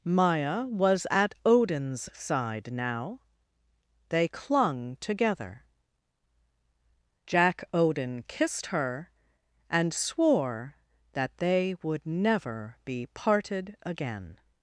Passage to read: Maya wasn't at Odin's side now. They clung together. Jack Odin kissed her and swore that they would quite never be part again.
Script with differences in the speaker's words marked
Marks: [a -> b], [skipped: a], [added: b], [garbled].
Maya [wasn't -> was] at Odin's side now. They clung together. Jack Odin kissed her and swore that they would [skipped: quite] never be [part -> parted] again.